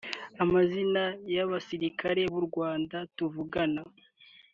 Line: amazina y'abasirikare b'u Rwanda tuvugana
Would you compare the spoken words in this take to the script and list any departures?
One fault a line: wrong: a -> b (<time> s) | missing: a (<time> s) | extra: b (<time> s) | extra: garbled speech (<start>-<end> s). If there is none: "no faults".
no faults